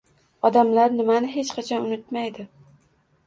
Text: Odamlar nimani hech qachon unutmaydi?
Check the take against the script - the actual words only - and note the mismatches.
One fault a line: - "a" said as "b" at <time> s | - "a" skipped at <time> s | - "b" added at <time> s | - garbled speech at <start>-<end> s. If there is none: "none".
none